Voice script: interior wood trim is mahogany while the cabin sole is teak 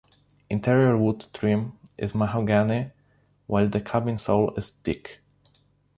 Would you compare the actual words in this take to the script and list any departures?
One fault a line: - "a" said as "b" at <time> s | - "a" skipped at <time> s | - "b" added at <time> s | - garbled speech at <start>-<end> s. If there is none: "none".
none